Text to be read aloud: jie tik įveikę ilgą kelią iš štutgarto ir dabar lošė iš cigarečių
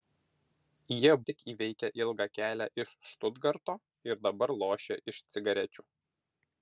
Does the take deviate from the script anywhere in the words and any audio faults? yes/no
no